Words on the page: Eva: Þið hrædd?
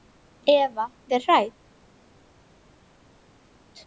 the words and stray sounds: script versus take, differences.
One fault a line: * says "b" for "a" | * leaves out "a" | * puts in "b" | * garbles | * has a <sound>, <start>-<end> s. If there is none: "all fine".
all fine